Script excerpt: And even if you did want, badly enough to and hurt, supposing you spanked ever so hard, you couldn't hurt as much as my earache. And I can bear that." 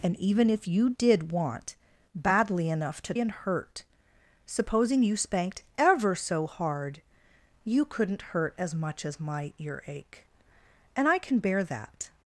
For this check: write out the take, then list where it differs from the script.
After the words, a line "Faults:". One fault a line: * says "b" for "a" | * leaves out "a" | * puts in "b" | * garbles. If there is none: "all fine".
And even if you did want, badly enough to and hurt, supposing you spanked ever so hard, you couldn't hurt as much as my earache. And I can bear that."
Faults:
all fine